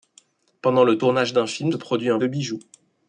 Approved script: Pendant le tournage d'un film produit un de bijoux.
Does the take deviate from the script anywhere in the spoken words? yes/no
no